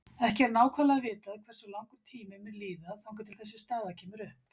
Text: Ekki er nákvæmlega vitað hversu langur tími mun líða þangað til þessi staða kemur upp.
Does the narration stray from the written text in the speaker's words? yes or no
no